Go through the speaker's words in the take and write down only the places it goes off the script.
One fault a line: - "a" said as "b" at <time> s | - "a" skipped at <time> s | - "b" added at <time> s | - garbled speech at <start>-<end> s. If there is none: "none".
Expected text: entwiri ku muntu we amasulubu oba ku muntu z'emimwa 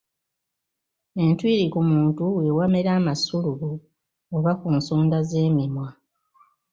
- "wamera" added at 2.6 s
- "muntu" said as "nsonda" at 4.8 s